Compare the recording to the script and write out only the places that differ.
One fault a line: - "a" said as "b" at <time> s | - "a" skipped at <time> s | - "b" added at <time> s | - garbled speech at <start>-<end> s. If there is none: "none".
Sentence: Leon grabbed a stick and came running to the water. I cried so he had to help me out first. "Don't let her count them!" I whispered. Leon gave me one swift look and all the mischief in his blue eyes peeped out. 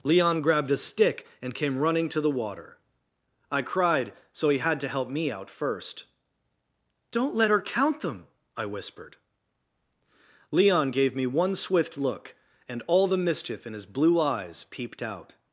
none